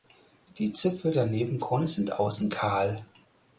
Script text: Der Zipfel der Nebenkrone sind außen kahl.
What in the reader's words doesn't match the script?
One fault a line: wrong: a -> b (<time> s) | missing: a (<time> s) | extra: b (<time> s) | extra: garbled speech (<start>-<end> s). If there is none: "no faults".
wrong: Der -> Die (0.6 s)